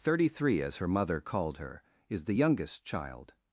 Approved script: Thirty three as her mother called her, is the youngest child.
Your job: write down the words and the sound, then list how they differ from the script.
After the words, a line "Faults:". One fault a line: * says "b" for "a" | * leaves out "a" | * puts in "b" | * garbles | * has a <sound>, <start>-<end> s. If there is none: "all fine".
Thirty three as her mother called her, is the youngest child.
Faults:
all fine